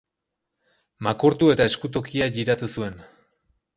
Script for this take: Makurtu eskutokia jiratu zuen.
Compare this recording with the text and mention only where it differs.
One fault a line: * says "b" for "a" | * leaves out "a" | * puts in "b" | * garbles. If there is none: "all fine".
* puts in "eta"